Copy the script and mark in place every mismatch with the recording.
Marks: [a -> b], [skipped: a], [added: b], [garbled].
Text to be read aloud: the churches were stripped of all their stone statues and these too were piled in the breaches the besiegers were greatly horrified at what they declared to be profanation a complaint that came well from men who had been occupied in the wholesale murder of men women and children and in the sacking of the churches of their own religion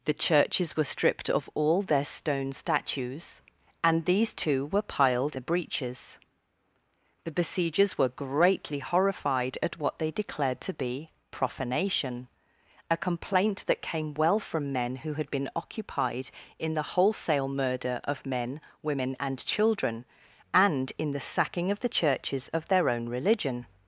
the churches were stripped of all their stone statues and these too were piled [skipped: in] the breaches the besiegers were greatly horrified at what they declared to be profanation a complaint that came well from men who had been occupied in the wholesale murder of men women and children and in the sacking of the churches of their own religion